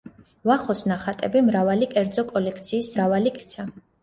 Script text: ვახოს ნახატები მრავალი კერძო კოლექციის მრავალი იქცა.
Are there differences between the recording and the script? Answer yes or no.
no